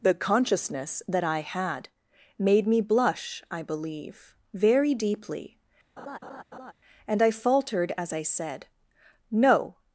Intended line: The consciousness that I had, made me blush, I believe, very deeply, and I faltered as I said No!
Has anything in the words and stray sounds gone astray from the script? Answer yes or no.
yes